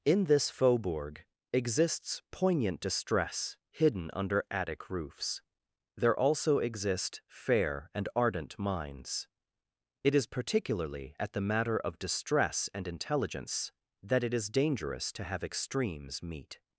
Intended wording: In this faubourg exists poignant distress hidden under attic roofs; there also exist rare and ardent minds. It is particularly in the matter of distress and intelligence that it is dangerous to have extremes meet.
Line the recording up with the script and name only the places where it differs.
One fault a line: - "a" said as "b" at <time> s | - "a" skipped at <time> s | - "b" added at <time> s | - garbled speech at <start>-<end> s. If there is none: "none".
- "rare" said as "fair" at 7.3 s
- "in" said as "at" at 11.2 s